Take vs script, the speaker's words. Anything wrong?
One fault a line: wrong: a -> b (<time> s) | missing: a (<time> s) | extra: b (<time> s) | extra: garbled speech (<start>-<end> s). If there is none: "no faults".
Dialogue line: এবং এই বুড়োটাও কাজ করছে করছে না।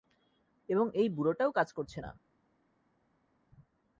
missing: করছে (2.0 s)